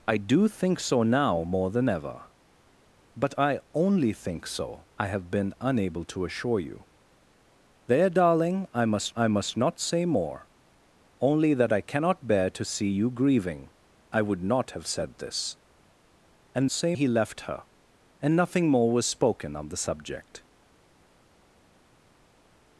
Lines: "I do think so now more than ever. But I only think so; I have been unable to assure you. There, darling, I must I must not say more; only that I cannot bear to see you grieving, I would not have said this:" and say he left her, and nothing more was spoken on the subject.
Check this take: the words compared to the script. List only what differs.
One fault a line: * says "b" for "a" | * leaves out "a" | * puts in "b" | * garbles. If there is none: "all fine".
all fine